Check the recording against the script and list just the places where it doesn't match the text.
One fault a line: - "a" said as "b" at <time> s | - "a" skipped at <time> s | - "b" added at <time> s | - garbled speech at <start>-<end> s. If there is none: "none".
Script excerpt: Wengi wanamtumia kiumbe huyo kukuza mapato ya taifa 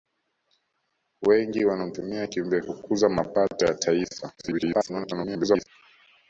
- "huyo" skipped at 2.6 s
- garbled speech at 4.4-5.7 s